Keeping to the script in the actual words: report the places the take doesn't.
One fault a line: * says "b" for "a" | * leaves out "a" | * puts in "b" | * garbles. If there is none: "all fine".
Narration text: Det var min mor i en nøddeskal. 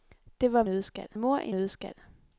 * says "nøddeskal" for "min"
* leaves out "en"